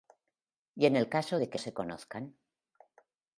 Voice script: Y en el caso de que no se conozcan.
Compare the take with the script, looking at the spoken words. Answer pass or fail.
fail